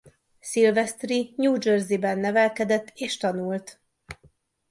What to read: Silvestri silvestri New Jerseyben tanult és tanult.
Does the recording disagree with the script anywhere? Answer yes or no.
yes